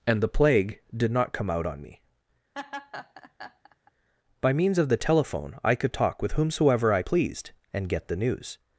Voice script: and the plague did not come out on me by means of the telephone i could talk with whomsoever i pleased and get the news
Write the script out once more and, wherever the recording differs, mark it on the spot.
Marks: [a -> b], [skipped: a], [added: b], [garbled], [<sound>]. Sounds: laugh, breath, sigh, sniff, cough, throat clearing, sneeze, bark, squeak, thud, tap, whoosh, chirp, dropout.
and the plague did not come out on me [laugh] by means of the telephone i could talk with whomsoever i pleased and get the news